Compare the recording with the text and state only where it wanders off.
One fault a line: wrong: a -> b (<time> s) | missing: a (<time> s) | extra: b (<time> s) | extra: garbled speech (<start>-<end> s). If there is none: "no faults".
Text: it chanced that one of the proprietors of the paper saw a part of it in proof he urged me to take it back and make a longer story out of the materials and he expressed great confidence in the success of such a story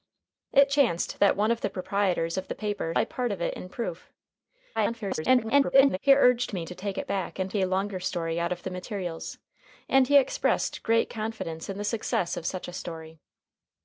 missing: saw (3.0 s)
extra: garbled speech (4.8-6.0 s)
missing: make (7.5 s)